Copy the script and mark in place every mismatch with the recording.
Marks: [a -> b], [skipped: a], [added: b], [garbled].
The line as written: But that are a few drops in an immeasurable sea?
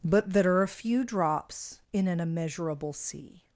But that are a few drops in an immeasurable sea?